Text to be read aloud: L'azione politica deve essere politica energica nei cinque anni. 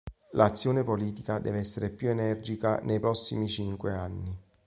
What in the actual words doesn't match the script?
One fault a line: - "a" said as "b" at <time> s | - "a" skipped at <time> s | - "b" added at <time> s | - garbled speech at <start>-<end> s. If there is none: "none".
- "politica" said as "più" at 1.9 s
- "prossimi" added at 3.0 s